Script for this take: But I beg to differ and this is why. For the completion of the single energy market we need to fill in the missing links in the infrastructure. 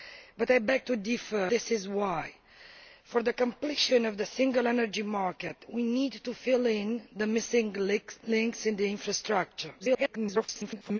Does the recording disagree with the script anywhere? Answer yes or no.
yes